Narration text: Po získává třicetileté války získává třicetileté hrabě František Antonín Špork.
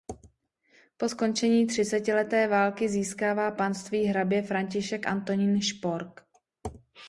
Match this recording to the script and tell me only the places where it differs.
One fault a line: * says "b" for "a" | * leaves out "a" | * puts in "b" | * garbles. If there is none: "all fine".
* says "skončení" for "získává"
* says "panství" for "třicetileté"